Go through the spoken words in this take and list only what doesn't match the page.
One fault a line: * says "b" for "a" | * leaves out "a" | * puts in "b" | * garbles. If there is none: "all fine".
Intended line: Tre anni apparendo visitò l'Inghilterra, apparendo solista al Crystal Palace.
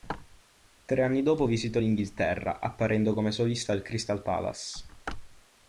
* says "dopo" for "apparendo"
* puts in "come"